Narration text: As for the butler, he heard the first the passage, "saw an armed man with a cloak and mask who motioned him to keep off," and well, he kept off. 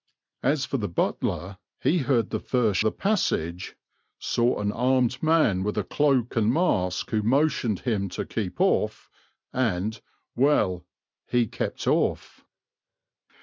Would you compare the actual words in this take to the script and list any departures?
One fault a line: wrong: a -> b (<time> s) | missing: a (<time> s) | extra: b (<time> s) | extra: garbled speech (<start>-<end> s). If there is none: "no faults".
no faults